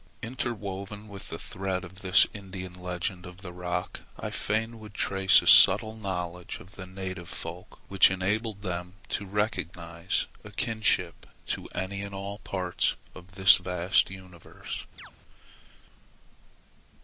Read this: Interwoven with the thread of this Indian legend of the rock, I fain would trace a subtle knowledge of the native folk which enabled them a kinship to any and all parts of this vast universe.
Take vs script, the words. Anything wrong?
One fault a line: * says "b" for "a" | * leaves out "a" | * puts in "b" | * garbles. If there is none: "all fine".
* puts in "to recognize"